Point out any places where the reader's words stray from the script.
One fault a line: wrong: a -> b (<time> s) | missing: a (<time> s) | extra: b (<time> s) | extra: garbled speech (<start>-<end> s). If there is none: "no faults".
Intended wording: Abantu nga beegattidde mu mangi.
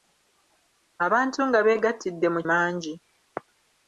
no faults